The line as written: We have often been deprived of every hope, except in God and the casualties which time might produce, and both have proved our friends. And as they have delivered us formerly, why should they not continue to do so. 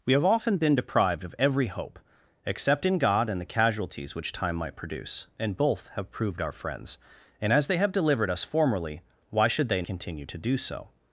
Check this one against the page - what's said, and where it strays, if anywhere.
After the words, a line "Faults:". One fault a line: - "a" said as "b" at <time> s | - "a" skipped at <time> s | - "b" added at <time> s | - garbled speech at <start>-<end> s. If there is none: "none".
We have often been deprived of every hope, except in God and the casualties which time might produce, and both have proved our friends. And as they have delivered us formerly, why should they continue to do so.
Faults:
- "not" skipped at 9.8 s